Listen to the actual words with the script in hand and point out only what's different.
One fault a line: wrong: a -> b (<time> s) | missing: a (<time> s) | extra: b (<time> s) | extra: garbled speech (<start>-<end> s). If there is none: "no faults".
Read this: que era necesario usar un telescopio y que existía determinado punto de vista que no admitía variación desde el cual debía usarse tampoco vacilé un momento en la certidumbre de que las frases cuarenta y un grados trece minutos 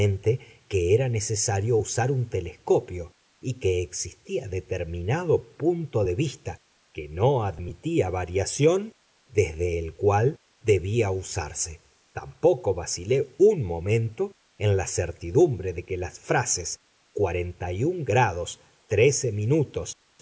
no faults